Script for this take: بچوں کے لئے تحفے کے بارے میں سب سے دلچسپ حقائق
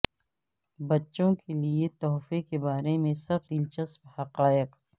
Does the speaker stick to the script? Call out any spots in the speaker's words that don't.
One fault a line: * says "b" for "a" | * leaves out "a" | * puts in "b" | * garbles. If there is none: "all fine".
* leaves out "سے"